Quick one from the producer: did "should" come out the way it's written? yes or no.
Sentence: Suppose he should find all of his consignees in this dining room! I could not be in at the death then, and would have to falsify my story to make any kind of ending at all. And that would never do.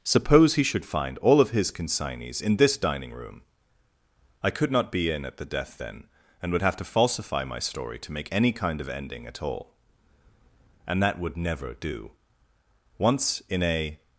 yes